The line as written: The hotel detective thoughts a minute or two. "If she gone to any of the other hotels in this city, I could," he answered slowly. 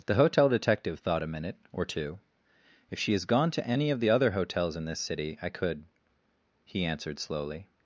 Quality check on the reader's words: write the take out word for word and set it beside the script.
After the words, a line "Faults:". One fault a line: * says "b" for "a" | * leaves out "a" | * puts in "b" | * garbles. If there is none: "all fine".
The hotel detective thought a minute or two. "If she has gone to any of the other hotels in this city, I could," he answered slowly.
Faults:
* says "thought" for "thoughts"
* puts in "has"